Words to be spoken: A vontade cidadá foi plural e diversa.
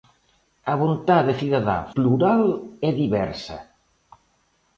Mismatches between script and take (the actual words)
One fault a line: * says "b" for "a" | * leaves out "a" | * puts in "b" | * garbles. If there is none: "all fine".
* leaves out "foi"